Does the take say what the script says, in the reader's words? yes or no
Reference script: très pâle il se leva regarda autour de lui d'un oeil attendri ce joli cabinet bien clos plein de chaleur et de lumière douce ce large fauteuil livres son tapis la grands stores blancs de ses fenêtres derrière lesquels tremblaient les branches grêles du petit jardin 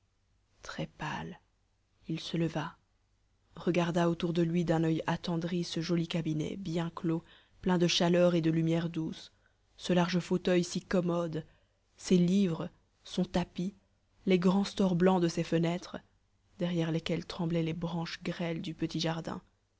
no